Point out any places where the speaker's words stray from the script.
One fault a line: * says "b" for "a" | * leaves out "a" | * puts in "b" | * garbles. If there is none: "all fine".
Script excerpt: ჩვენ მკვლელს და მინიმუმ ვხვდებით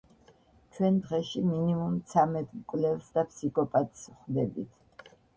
* puts in "დღეში მინიმუმ ცამეტ"
* says "ფსიქოპატს" for "მინიმუმ"